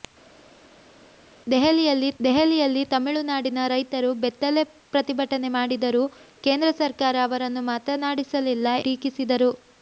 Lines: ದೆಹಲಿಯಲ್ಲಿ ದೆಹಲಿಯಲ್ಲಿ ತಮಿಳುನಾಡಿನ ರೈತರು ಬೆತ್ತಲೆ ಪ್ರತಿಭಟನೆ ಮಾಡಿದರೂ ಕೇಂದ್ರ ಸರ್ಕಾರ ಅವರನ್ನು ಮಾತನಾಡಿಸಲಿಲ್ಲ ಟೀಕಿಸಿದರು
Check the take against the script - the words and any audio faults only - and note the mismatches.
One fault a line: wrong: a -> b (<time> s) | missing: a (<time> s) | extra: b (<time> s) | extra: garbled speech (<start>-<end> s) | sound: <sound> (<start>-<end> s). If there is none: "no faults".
no faults